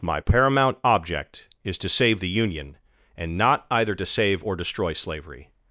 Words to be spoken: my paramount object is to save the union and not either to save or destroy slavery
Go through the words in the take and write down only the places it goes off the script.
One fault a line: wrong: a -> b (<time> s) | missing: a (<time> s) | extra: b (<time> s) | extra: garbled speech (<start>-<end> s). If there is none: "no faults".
no faults